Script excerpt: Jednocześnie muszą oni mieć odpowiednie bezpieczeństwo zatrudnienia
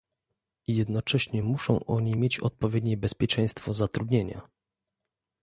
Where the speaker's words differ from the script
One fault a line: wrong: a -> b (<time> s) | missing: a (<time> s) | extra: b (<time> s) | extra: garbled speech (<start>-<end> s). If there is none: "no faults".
no faults